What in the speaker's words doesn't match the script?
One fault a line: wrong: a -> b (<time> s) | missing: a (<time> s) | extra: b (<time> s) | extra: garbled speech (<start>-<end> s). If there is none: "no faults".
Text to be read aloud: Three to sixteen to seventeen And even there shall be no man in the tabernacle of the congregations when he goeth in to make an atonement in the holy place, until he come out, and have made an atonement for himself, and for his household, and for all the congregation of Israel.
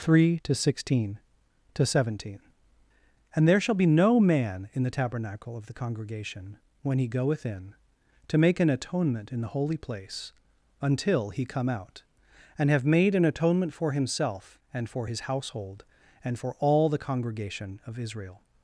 missing: even (3.5 s)
wrong: congregations -> congregation (5.8 s)